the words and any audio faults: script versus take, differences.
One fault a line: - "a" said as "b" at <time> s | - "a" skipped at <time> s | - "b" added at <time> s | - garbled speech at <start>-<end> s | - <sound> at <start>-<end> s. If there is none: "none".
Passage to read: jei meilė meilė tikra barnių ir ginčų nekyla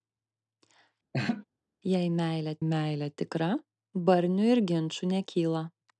- laugh at 1.1-1.5 s